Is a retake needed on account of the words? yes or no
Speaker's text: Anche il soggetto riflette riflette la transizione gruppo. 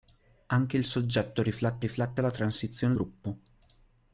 no